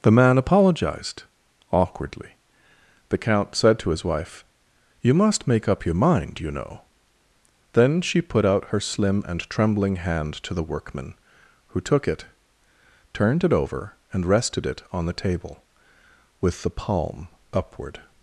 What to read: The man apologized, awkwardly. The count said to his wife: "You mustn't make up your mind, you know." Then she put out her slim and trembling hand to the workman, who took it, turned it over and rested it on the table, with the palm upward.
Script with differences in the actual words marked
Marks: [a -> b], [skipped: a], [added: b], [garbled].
The man apologized, awkwardly. The count said to his wife: "You [mustn't -> must] make up your mind, you know." Then she put out her slim and trembling hand to the workman, who took it, turned it over and rested it on the table, with the palm upward.